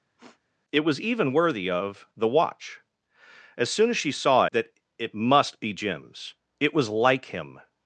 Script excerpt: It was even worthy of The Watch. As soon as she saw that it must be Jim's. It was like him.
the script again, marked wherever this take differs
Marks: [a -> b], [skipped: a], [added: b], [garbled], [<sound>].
[sniff] It was even worthy of The Watch. As soon as she saw that it must be Jim's. It was like him.